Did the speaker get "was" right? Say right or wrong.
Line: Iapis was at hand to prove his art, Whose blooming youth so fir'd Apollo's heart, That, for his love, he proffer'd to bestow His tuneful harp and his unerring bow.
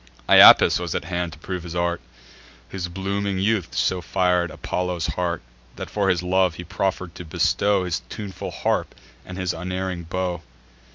right